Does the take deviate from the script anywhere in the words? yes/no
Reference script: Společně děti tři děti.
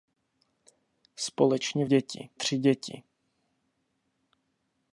no